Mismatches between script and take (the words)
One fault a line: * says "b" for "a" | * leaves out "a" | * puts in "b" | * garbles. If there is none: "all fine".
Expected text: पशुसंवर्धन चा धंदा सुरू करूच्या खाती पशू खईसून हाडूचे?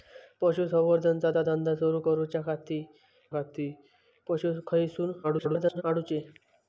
* puts in "चा"
* puts in "खाती"
* garbles